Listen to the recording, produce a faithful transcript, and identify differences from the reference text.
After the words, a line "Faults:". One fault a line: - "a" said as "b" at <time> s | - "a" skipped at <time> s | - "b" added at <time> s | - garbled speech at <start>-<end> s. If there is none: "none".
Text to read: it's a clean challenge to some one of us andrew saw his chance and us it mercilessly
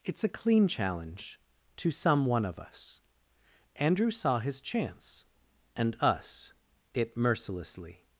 it's a clean challenge to some one of us andrew saw his chance and us it mercilessly
Faults:
none